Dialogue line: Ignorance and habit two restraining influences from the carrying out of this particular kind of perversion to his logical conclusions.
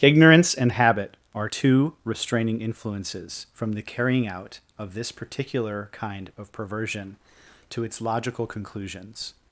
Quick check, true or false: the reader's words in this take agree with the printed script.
false